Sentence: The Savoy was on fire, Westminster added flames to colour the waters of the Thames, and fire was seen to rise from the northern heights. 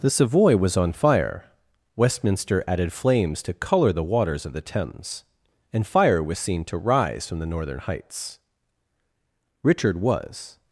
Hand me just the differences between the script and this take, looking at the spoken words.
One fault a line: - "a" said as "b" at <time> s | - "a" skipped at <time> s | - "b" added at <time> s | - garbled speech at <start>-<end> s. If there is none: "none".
- "Richard was" added at 9.6 s